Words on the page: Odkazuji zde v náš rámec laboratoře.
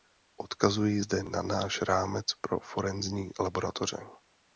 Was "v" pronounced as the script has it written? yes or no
no